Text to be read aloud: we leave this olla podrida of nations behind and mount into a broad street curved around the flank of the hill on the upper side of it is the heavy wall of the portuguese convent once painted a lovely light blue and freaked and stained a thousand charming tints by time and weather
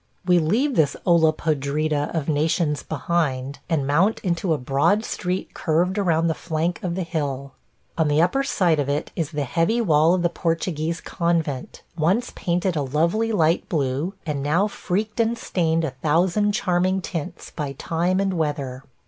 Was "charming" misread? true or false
false